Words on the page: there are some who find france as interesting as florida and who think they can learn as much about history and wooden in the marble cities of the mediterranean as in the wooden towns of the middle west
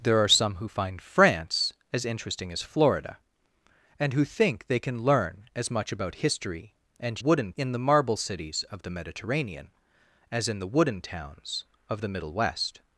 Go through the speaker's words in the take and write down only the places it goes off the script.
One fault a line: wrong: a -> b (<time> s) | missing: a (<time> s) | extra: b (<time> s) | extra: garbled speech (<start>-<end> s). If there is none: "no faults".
no faults